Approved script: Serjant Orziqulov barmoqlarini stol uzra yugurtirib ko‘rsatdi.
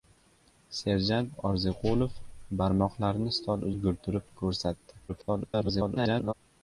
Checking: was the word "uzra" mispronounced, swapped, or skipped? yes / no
yes